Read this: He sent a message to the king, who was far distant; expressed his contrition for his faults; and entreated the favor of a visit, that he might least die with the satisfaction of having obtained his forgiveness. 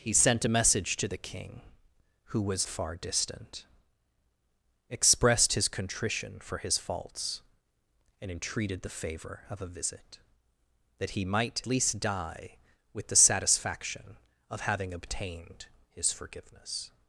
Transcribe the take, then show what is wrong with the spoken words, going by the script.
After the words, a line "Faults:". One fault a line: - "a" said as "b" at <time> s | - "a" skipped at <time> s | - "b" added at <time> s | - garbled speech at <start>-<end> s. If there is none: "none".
He sent a message to the king, who was far distant; expressed his contrition for his faults; and entreated the favor of a visit, that he might least die with the satisfaction of having obtained his forgiveness.
Faults:
none